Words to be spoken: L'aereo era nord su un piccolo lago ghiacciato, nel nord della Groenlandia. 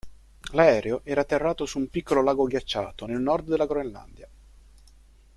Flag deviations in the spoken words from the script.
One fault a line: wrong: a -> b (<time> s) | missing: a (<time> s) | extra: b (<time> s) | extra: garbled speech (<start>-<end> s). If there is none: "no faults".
wrong: nord -> atterrato (1.2 s)